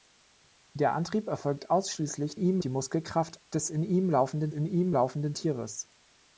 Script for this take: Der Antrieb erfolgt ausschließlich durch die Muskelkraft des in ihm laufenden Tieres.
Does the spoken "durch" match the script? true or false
false